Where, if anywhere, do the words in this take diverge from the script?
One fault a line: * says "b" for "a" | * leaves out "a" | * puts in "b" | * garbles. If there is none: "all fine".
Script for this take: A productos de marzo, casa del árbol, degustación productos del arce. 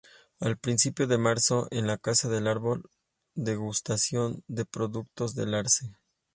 * says "principios" for "productos"
* puts in "en la"
* puts in "de"